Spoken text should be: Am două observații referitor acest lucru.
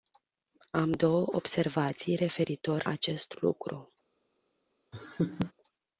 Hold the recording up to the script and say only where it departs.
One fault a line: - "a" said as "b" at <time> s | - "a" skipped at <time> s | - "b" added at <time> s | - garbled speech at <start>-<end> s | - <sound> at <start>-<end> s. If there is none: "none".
- laugh at 4.9-5.5 s